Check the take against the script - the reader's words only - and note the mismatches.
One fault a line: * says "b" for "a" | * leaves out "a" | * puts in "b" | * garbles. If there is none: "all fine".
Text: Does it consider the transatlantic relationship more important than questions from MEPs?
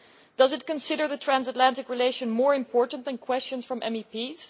all fine